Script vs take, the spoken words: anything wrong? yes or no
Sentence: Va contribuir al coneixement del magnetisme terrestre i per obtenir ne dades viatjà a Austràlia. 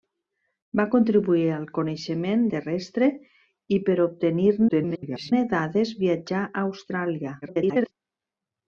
yes